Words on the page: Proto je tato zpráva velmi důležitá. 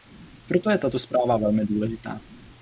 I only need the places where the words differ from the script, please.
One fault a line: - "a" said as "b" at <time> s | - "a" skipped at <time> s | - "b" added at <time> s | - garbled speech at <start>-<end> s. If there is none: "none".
none